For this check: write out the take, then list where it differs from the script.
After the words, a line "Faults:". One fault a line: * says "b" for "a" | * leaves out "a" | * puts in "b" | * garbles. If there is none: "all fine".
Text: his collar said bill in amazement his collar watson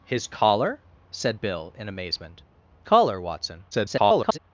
his collar said bill in amazement collar watson [garbled]
Faults:
* leaves out "his"
* garbles